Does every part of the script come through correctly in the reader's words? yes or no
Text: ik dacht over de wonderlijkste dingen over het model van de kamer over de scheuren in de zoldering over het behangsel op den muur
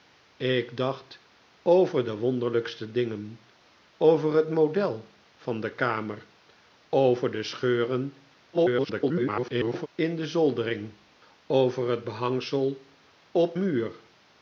no